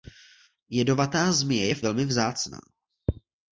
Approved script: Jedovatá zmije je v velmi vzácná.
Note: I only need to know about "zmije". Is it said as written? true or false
true